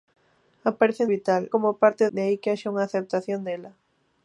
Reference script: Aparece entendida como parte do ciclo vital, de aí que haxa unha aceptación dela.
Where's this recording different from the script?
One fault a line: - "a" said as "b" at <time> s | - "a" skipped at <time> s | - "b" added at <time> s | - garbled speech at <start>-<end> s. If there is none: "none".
- "entendida" said as "vital" at 1.1 s
- "do ciclo vital" skipped at 2.0 s